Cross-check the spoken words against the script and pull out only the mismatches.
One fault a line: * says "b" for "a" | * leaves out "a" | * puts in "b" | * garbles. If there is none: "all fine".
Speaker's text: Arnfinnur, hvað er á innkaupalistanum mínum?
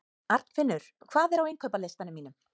all fine